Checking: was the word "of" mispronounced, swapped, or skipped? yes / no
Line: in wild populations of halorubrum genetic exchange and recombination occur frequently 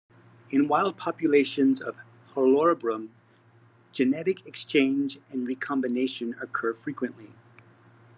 no